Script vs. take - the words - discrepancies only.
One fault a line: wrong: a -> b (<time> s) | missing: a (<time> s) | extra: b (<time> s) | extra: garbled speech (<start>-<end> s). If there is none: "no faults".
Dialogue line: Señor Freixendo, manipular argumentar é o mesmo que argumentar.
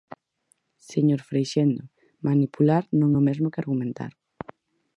wrong: argumentar -> non (3.0 s)